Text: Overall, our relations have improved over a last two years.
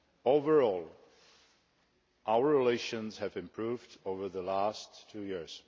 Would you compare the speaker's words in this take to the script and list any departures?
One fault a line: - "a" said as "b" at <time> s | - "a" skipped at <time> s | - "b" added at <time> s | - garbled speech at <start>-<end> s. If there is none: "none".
- "a" said as "the" at 4.3 s